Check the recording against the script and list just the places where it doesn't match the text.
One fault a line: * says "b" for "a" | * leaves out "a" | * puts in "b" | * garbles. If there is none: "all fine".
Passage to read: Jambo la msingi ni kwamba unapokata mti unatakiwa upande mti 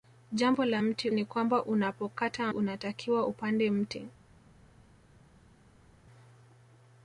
* says "mti" for "msingi"
* leaves out "mti"